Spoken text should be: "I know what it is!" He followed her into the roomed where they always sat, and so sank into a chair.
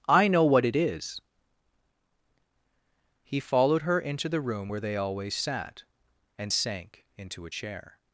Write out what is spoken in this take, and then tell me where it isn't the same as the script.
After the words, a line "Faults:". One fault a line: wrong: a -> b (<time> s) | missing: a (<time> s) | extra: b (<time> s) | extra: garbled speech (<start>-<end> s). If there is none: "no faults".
"I know what it is!" He followed her into the room where they always sat, and sank into a chair.
Faults:
wrong: roomed -> room (4.4 s)
missing: so (6.5 s)